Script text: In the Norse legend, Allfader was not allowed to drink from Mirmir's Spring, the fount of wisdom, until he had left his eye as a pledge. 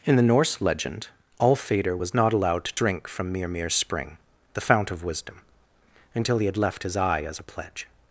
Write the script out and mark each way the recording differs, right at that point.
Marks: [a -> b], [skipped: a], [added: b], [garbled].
In the Norse legend, Allfader was not allowed to drink from Mirmir's Spring, the fount of wisdom, until he had left his eye as a pledge.